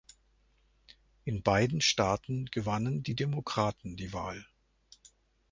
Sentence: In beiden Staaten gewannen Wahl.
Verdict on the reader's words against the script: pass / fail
fail